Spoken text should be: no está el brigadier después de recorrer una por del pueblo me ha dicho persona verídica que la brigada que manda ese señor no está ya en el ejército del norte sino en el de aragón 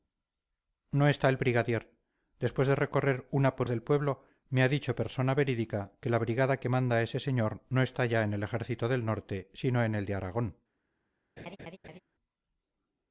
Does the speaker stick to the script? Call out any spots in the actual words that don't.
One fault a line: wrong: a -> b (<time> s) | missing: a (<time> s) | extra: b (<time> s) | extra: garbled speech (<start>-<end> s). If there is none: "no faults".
no faults